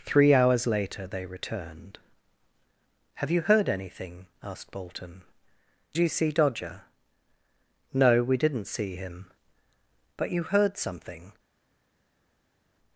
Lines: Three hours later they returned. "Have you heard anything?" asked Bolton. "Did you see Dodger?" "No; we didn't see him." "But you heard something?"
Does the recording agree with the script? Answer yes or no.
no